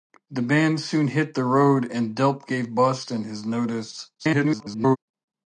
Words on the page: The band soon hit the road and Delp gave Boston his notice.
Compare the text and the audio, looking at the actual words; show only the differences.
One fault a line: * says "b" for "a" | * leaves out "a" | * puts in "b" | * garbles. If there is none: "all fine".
* garbles